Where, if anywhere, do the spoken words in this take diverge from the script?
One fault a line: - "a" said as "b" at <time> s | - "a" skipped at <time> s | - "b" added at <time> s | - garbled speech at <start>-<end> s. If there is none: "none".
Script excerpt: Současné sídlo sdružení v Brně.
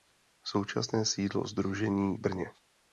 none